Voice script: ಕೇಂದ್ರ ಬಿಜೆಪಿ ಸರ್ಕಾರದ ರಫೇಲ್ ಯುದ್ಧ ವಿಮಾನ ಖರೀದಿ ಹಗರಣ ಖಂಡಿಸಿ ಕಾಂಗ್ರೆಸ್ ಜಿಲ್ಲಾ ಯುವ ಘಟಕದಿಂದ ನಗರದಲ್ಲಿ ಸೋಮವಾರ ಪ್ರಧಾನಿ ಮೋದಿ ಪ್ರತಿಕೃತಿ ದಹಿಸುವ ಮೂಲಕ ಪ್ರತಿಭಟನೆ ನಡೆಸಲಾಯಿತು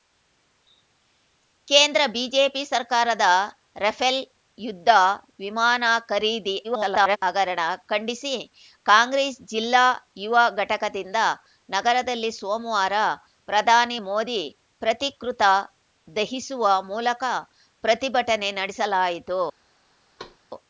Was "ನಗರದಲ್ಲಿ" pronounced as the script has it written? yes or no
yes